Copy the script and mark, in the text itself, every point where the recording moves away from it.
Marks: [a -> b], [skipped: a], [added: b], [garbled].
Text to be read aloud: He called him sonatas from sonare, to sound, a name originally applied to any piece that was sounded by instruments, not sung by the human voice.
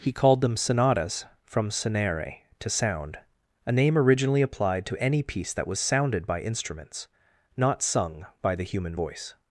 He called [him -> them] sonatas from sonare, to sound, a name originally applied to any piece that was sounded by instruments, not sung by the human voice.